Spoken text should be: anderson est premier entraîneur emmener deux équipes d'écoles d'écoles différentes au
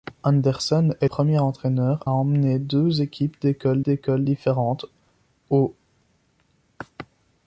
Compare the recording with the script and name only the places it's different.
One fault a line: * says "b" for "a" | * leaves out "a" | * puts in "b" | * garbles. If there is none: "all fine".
all fine